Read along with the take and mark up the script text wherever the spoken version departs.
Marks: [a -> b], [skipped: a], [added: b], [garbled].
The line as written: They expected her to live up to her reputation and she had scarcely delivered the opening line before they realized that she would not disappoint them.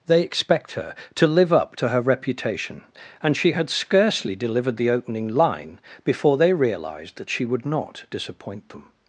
They [expected -> expect] her to live up to her reputation and she had scarcely delivered the opening line before they realized that she would not disappoint them.